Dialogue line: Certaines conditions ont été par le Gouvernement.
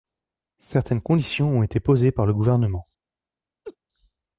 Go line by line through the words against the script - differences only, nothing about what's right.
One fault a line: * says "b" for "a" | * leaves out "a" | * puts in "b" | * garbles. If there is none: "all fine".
* puts in "posées"